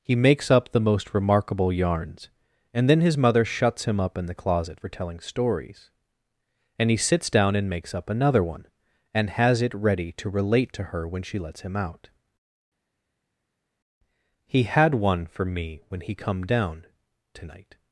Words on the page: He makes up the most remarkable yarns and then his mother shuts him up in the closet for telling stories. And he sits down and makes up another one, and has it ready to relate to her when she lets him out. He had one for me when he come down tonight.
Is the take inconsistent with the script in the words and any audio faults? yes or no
no